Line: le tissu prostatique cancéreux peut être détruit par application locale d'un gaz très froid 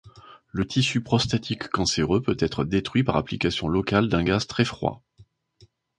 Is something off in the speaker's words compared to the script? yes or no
no